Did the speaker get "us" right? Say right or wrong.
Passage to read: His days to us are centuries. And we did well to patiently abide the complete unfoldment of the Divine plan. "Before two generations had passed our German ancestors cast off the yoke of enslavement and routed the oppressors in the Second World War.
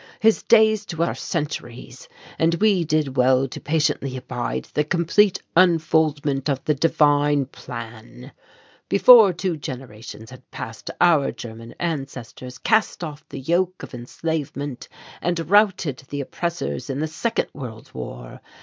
wrong